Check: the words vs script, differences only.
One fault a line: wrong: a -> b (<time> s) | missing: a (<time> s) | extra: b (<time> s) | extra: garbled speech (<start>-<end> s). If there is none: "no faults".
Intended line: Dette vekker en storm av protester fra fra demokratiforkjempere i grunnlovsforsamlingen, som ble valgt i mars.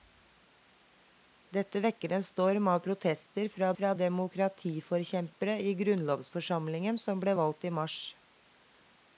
no faults